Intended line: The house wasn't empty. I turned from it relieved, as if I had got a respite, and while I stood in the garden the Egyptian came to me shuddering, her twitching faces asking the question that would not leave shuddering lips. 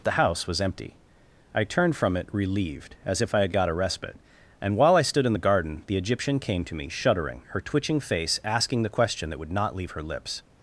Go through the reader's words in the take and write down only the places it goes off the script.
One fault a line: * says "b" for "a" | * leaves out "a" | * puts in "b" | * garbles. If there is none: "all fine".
* says "was" for "wasn't"
* says "face" for "faces"
* says "her" for "shuddering"